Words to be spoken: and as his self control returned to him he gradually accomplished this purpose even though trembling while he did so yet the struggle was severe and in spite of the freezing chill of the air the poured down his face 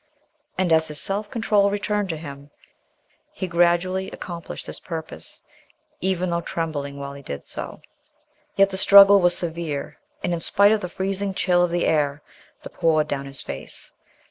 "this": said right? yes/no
yes